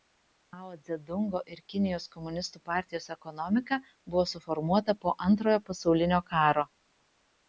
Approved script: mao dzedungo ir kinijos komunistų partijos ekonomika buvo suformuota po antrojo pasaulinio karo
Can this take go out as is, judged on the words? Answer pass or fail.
pass